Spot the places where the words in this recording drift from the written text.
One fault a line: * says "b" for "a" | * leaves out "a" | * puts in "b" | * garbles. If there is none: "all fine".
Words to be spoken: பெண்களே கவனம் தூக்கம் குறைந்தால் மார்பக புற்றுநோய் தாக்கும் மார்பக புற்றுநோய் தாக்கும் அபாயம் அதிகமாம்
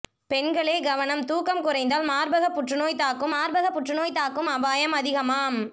all fine